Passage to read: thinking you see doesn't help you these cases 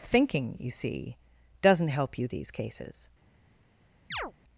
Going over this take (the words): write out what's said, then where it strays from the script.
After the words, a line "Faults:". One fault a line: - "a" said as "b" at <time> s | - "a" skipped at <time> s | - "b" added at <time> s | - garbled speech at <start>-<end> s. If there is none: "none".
thinking you see doesn't help you these cases
Faults:
none